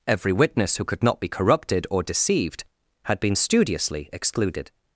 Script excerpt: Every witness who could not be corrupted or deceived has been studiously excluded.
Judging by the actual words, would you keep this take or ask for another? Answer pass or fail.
fail